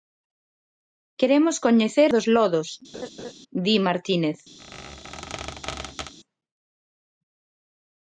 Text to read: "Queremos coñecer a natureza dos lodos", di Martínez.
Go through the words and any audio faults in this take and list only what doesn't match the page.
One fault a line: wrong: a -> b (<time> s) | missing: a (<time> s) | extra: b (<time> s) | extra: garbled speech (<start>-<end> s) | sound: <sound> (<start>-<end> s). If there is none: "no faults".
missing: a natureza (2.1 s)
sound: laugh (2.9-3.3 s)
sound: squeak (4.6-6.1 s)